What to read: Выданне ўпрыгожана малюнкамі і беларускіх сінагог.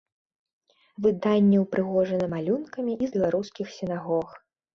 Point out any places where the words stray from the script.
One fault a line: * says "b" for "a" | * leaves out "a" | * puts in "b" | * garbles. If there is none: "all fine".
all fine